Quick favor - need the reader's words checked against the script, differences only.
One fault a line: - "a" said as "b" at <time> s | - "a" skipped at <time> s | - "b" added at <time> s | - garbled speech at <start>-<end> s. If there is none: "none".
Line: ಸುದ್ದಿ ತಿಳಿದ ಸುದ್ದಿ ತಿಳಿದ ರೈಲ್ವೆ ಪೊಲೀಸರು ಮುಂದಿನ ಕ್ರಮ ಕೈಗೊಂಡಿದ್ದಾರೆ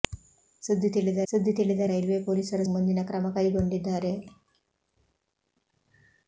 none